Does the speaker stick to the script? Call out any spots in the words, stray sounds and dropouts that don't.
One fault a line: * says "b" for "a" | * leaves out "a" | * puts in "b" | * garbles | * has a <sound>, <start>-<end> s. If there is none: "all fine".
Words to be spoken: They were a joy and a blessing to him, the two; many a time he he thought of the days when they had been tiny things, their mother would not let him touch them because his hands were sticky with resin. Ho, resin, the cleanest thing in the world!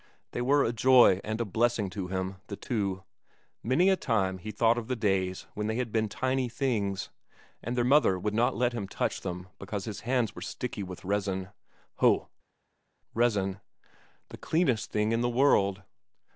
* leaves out "he"
* puts in "and"